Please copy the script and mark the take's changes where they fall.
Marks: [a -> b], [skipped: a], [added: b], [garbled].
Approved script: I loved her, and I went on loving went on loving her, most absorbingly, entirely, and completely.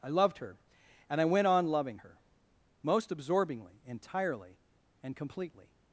I loved her, and I went on loving [skipped: went on loving] her, most absorbingly, entirely, and completely.